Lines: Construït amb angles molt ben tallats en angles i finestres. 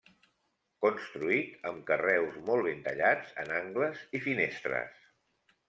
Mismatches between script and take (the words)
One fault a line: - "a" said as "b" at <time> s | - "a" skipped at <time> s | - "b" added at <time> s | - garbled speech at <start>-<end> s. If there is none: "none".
- "angles" said as "carreus" at 1.9 s